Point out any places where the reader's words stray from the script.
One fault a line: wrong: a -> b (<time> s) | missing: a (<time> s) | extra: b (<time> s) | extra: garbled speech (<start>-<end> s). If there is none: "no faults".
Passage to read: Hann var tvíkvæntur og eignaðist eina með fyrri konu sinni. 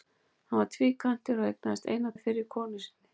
no faults